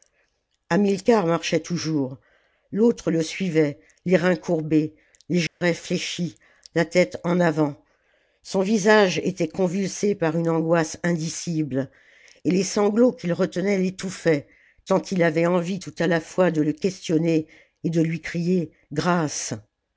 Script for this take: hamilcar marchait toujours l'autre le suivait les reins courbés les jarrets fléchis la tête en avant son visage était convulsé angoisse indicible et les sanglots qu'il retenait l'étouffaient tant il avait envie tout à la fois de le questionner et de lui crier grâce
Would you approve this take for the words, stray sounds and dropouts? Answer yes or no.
no